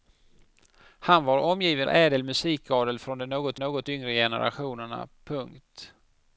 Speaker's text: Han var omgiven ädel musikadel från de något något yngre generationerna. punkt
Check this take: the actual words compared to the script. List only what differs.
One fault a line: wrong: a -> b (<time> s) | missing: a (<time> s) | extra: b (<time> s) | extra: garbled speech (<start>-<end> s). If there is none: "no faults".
no faults